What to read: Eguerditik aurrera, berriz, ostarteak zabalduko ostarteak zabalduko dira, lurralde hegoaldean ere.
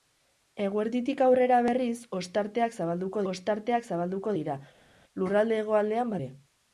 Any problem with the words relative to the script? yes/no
no